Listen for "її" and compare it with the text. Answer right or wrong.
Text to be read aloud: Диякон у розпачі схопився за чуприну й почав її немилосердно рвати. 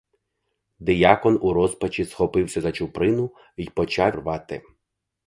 wrong